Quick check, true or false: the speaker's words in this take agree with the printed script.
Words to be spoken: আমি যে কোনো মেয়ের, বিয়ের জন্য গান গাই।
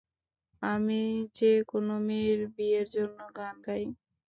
true